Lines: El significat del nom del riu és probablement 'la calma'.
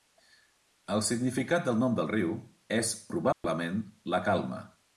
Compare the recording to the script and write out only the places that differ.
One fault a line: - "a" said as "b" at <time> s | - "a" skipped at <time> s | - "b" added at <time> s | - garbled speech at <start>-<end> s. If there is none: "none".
none